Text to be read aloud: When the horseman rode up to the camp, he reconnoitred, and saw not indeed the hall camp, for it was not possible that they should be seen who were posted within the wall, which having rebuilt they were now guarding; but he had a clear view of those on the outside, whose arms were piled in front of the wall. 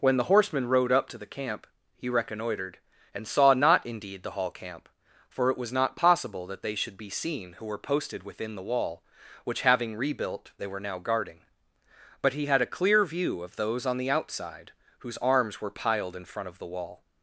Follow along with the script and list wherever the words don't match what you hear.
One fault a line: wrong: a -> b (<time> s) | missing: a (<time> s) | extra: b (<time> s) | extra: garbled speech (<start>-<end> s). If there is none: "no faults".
no faults